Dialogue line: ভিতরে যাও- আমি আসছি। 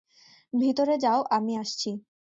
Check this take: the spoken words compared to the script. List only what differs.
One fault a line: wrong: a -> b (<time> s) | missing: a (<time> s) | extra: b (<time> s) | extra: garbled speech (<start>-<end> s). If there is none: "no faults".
no faults